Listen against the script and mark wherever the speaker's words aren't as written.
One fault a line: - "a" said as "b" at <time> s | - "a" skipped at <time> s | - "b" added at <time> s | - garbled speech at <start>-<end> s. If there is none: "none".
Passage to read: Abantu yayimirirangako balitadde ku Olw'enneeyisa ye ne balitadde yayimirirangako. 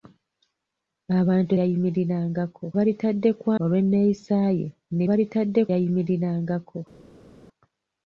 none